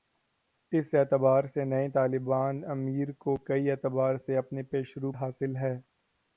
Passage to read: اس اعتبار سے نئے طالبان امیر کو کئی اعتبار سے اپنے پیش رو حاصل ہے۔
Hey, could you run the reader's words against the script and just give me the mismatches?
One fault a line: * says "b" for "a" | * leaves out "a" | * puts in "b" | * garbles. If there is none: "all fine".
all fine